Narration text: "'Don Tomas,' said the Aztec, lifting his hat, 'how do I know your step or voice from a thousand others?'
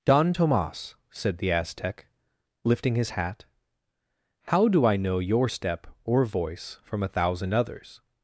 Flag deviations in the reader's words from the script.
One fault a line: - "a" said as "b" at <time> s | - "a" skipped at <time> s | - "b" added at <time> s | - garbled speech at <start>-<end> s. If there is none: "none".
none